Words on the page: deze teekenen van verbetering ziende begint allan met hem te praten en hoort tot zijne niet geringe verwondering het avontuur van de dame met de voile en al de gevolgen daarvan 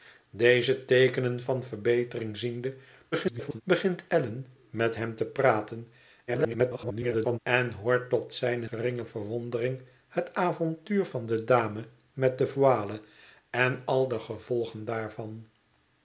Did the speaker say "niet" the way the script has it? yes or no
no